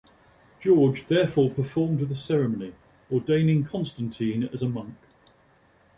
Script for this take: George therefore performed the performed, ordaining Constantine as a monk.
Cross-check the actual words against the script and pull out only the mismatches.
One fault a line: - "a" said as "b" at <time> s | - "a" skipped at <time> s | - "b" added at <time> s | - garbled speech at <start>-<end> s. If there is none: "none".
- "performed" said as "ceremony" at 2.2 s